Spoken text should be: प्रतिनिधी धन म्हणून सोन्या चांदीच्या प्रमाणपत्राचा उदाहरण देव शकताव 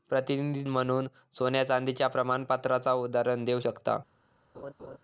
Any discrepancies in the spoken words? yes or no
yes